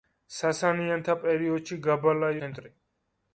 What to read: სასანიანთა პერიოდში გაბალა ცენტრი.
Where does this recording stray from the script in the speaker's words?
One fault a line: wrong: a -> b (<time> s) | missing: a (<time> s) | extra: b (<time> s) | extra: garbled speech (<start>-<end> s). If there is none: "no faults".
no faults